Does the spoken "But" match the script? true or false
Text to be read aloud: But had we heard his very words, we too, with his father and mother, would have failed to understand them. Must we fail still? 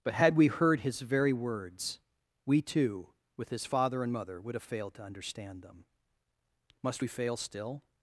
true